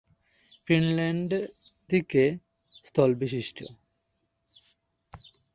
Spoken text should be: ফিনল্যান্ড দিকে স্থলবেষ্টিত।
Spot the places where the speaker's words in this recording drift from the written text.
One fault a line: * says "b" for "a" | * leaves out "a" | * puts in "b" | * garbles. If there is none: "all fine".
all fine